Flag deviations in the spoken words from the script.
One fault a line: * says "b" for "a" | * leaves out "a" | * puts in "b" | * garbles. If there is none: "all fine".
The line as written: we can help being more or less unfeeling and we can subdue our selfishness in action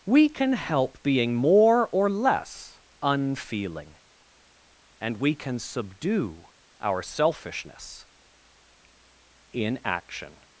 all fine